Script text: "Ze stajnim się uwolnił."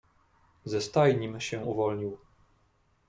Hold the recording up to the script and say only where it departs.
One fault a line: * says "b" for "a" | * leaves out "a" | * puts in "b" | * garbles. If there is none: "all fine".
all fine